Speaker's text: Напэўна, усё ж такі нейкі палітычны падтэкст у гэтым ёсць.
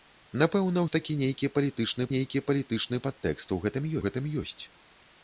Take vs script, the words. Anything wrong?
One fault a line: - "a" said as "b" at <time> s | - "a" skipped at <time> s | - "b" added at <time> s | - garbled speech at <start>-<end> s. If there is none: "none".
- "усё" skipped at 0.8 s
- "нейкі палітычны" added at 2.1 s
- "гэтым" added at 4.1 s